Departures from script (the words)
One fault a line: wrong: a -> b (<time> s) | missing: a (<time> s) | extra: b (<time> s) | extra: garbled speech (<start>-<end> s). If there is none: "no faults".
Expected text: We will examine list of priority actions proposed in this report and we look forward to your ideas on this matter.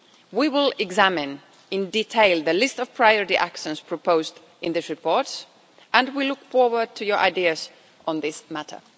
extra: in detail the (1.7 s)